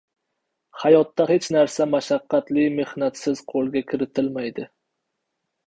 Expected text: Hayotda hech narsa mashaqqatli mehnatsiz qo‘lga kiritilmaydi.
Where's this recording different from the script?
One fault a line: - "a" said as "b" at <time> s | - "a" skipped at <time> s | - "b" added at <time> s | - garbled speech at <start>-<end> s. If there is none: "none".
none